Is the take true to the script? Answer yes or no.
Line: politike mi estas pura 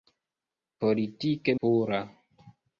no